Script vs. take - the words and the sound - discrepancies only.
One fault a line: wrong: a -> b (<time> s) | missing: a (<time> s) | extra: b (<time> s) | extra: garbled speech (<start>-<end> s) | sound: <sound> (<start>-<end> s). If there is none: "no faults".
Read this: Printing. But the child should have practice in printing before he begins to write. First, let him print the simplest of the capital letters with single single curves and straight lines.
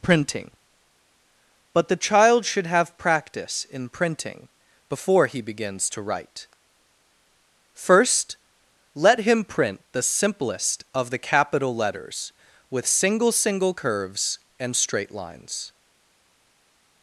no faults